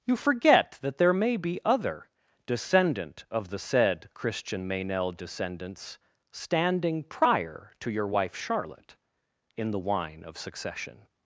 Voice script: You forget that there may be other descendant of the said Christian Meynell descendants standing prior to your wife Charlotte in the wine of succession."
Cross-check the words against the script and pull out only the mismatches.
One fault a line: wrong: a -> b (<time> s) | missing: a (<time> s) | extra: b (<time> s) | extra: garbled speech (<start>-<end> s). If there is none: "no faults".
no faults